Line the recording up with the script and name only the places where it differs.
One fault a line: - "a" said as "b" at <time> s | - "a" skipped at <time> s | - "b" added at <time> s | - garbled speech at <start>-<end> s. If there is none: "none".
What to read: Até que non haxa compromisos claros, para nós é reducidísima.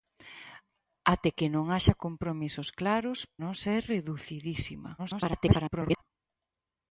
- "para" skipped at 3.2 s
- garbled speech at 5.0-6.0 s